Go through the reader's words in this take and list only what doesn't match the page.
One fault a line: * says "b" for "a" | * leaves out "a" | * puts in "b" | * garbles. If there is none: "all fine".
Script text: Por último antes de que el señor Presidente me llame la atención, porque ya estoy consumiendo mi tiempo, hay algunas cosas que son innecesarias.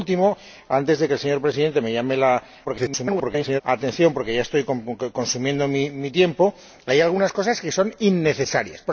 * garbles